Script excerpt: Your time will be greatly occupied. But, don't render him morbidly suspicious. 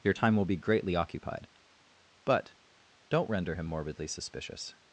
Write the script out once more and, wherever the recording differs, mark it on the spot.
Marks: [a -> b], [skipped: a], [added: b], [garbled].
Your time will be greatly occupied. But, don't render him morbidly suspicious.